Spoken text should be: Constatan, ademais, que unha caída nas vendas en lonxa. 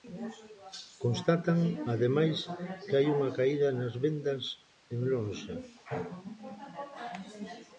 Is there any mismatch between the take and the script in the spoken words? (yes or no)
yes